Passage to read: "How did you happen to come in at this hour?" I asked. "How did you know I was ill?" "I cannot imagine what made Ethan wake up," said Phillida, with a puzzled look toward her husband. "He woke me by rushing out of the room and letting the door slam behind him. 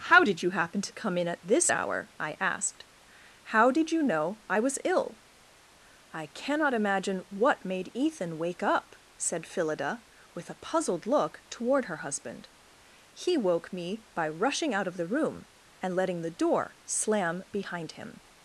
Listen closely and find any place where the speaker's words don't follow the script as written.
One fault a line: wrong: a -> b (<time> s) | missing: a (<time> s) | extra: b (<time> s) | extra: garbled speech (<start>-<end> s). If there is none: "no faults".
no faults